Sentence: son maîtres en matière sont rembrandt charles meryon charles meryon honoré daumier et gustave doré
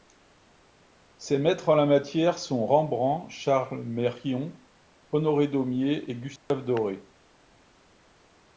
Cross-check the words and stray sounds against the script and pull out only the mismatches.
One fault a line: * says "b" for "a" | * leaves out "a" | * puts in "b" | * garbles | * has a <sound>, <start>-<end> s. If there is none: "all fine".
* says "ses" for "son"
* puts in "la"
* leaves out "charles meryon"
* has a dropout, 6.4-6.5 s